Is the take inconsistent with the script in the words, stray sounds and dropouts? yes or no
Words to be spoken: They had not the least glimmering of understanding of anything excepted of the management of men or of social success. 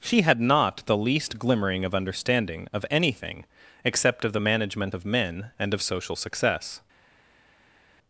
yes